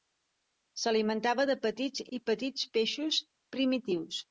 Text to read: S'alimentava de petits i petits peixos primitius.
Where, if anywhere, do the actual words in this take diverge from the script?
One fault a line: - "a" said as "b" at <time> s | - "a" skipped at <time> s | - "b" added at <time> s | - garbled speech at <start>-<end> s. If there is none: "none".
none